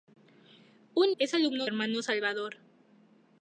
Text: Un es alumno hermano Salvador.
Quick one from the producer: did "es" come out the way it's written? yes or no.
yes